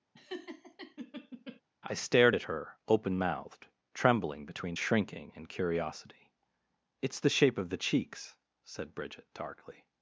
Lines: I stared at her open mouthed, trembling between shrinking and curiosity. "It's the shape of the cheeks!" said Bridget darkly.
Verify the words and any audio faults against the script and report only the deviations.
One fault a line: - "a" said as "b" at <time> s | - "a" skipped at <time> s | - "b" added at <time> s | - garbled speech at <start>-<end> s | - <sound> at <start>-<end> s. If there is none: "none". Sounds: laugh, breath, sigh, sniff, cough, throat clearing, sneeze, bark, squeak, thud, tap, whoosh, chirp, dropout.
- laugh at 0.1-1.6 s